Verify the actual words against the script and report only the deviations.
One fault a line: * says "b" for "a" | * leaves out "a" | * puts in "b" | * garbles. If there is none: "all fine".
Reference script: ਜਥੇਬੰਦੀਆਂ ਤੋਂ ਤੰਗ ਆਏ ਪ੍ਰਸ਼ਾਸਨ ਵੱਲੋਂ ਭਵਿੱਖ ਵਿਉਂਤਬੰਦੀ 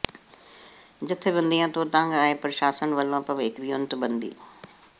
all fine